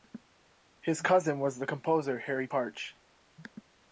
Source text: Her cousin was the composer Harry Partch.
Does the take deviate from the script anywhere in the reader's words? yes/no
yes